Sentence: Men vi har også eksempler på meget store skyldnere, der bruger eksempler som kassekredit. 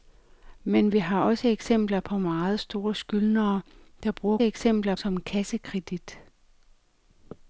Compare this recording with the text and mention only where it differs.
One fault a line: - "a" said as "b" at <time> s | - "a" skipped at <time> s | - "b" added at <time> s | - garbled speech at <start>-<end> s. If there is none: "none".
none